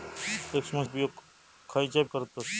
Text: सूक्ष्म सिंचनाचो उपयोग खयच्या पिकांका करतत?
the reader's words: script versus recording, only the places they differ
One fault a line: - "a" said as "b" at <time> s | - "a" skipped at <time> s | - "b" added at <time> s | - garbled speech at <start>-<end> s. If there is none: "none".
- "सिंचनाचो" skipped at 0.8 s
- "पिकांका" skipped at 2.0 s